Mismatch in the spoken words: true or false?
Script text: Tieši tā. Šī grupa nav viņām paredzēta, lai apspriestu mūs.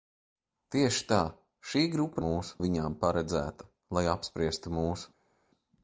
true